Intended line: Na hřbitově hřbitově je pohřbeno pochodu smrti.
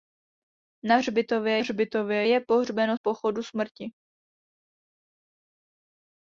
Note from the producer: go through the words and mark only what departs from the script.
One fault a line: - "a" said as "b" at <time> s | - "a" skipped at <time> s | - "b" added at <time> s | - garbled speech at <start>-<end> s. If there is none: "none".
none